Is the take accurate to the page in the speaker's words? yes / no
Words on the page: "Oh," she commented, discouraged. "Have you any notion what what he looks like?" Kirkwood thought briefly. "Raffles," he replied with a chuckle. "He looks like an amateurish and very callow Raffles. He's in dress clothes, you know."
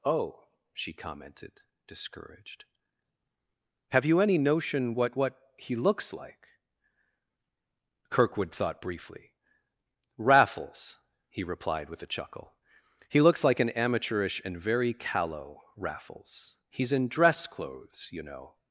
yes